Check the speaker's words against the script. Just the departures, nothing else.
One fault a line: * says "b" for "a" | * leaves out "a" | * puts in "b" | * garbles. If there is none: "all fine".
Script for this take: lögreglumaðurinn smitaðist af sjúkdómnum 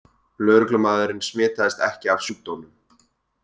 * puts in "ekki"